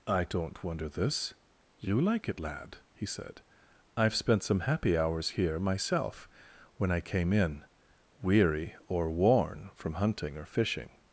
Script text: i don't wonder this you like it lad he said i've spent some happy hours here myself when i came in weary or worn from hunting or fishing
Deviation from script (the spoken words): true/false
false